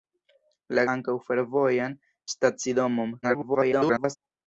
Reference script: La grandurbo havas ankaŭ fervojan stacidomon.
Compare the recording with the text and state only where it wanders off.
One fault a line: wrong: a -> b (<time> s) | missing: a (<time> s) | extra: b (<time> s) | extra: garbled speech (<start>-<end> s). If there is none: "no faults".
missing: grandurbo havas (0.8 s)
extra: garbled speech (3.2-4.2 s)